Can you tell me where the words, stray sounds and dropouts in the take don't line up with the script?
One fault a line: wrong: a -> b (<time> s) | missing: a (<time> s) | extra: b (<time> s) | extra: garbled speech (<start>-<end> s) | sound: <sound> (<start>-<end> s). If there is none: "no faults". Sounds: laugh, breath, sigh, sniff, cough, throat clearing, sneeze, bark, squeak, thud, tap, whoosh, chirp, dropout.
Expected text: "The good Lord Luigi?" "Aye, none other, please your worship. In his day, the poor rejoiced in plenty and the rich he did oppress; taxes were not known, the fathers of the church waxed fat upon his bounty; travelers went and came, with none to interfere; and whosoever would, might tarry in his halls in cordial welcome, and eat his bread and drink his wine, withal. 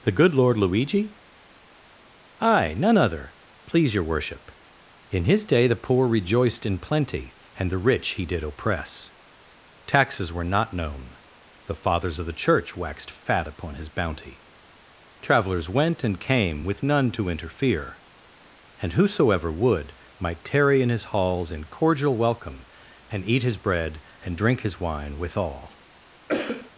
sound: cough (26.3-26.7 s)